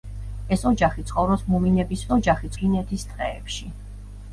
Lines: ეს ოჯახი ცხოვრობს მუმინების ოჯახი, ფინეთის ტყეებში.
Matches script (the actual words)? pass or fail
pass